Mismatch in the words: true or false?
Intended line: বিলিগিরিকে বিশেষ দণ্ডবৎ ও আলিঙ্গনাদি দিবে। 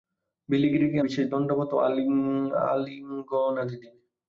false